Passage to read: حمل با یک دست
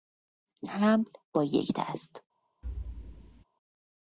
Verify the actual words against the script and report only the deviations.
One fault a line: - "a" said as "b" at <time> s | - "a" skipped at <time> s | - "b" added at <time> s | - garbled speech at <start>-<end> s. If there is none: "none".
none